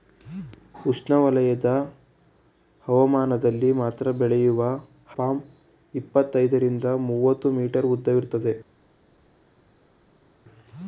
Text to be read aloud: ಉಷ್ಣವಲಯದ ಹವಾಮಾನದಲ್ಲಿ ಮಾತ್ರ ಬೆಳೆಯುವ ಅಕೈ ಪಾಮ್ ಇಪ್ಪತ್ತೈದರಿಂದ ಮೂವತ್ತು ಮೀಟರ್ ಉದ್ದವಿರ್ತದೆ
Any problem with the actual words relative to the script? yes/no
yes